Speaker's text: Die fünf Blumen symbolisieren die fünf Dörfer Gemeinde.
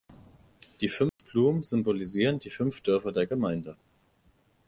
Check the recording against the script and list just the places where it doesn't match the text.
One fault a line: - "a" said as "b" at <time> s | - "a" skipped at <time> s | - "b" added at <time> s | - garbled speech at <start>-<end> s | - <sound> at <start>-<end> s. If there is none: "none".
- dropout at 1.1-1.2 s
- "der" added at 3.1 s